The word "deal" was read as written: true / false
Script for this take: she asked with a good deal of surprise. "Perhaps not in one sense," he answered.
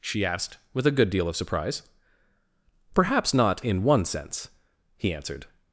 true